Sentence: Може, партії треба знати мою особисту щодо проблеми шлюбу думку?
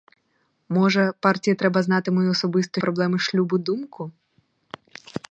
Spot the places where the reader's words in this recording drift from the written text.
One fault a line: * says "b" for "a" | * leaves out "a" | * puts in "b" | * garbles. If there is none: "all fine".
* leaves out "щодо"